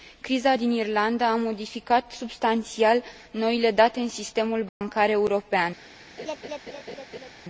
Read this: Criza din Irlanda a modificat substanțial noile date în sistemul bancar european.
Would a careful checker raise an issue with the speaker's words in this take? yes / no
no